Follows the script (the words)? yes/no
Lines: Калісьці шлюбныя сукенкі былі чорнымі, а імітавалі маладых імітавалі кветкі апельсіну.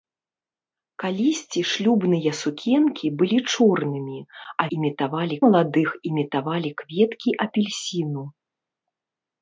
yes